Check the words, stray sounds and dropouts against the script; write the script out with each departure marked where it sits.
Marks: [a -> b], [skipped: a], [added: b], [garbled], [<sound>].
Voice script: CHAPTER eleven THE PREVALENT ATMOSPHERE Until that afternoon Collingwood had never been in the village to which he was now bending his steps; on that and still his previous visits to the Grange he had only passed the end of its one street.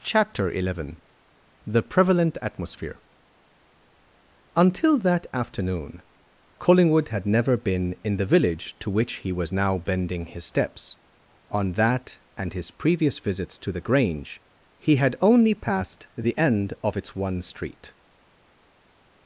CHAPTER eleven THE PREVALENT ATMOSPHERE Until that afternoon Collingwood had never been in the village to which he was now bending his steps; on that and [skipped: still] his previous visits to the Grange he had only passed the end of its one street.